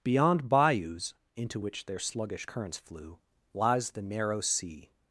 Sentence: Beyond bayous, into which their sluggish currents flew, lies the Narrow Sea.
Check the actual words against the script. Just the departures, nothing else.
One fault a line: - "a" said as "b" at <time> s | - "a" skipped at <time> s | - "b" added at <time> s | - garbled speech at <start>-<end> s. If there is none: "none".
none